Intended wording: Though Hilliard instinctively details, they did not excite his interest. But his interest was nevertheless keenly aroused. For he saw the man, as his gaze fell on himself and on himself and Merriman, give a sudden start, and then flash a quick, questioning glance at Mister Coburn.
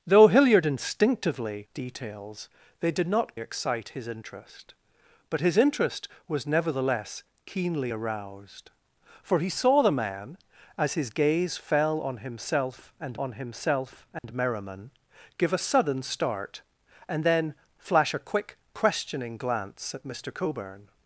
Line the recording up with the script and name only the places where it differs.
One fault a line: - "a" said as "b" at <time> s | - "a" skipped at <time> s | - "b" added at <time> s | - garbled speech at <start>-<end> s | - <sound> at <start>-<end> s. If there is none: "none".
- dropout at 14.2-14.2 s